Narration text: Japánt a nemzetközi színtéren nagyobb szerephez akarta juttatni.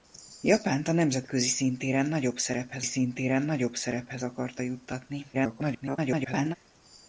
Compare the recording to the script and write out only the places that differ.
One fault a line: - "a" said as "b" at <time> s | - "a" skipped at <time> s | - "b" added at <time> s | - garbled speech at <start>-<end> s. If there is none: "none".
- "színtéren nagyobb szerephez" added at 2.8 s
- garbled speech at 5.3-6.6 s